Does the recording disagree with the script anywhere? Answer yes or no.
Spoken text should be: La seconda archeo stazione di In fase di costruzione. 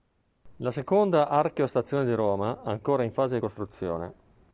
yes